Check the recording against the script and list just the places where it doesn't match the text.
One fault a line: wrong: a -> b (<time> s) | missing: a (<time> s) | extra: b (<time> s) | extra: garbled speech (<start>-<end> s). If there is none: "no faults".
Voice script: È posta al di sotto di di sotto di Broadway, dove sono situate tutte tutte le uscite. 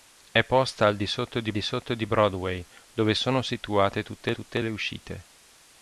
no faults